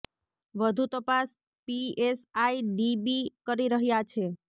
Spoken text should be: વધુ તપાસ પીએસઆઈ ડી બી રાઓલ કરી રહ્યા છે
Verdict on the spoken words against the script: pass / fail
fail